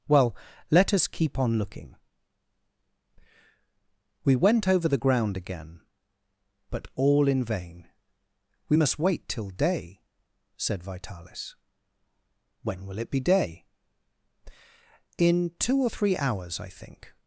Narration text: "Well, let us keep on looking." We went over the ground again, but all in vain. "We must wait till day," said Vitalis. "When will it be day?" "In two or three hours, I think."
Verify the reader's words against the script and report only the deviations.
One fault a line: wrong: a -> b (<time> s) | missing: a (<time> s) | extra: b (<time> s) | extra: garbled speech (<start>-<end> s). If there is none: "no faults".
no faults